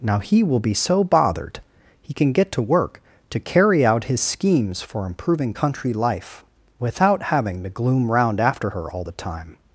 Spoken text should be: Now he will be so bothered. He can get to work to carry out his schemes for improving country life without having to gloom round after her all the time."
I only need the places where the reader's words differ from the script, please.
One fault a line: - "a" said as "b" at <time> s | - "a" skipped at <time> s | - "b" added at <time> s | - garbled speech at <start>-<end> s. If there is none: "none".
none